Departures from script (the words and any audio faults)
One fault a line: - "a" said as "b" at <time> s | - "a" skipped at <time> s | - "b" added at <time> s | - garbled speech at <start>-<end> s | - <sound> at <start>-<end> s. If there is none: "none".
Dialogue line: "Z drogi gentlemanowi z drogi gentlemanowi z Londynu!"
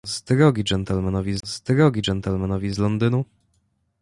none